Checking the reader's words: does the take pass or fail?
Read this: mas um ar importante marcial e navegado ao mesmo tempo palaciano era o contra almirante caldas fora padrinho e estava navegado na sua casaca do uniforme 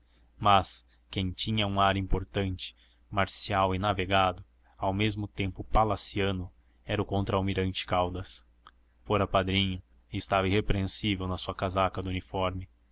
fail